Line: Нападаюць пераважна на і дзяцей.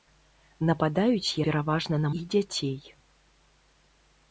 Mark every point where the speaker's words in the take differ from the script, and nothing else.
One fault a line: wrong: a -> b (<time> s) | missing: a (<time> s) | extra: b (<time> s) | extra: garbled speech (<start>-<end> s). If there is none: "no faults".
no faults